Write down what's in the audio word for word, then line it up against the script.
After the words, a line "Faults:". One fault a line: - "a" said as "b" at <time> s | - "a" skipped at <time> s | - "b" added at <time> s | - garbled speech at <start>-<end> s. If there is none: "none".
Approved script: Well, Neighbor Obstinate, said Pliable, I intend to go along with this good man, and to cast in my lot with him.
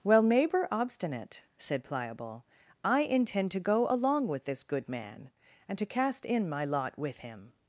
Well, Neighbor Obstinate, said Pliable, I intend to go along with this good man, and to cast in my lot with him.
Faults:
none